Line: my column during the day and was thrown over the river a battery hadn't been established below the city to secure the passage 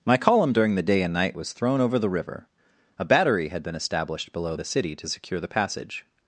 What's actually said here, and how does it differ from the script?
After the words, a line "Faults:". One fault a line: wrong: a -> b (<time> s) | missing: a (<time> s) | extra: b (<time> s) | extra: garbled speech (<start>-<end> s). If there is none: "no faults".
my column during the day and night was thrown over the river a battery had been established below the city to secure the passage
Faults:
extra: night (1.1 s)
wrong: hadn't -> had (3.5 s)